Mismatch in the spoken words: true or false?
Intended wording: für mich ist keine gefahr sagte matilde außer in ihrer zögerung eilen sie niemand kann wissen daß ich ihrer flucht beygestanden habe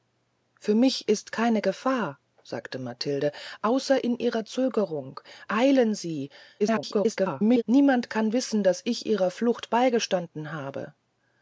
true